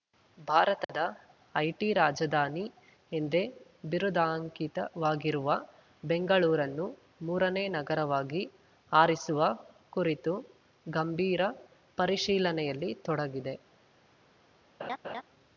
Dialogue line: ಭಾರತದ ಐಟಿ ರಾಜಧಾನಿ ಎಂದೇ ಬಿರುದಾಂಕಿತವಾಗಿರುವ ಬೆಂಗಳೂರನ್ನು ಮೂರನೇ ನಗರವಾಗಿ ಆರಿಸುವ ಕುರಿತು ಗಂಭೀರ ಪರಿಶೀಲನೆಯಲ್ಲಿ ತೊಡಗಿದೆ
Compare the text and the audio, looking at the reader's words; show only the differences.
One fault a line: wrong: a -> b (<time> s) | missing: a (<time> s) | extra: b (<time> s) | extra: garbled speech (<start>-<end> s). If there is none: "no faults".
no faults